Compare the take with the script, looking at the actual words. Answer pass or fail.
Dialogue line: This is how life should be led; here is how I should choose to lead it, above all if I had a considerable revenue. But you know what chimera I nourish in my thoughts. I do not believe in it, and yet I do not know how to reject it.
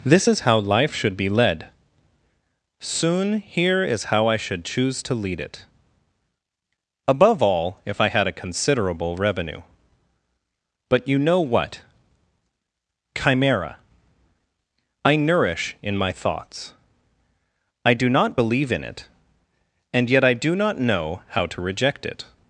fail